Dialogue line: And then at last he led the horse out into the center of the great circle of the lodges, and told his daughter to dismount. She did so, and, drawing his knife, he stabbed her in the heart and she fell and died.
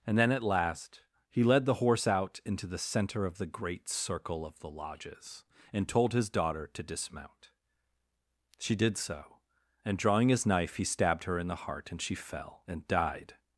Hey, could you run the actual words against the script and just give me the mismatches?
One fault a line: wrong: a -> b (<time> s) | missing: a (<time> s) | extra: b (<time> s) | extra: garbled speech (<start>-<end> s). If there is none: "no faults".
no faults